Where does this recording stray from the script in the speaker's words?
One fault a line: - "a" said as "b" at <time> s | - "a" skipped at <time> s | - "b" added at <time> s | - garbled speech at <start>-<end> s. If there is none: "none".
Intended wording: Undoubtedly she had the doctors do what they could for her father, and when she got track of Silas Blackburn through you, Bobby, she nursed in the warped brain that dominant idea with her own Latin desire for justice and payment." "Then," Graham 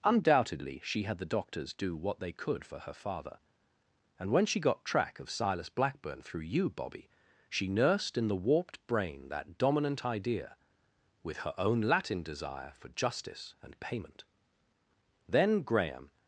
none